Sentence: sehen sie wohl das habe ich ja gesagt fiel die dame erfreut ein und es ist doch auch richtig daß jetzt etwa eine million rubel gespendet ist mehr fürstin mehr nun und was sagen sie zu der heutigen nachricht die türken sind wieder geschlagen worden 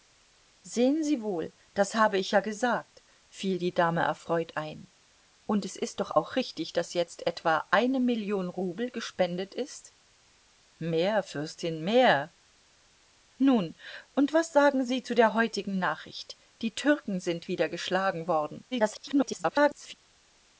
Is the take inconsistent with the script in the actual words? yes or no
yes